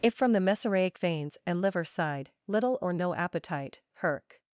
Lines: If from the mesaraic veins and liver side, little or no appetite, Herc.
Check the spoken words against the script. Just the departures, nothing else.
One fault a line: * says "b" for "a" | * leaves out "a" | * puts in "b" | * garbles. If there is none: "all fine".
all fine